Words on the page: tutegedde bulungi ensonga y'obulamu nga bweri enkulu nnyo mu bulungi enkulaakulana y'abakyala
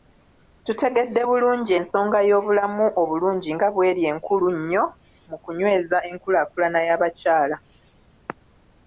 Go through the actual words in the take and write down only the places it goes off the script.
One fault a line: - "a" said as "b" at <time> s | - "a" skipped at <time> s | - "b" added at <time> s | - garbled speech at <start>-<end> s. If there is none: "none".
- "obulungi" added at 3.0 s
- "bulungi" said as "kunyweza" at 5.4 s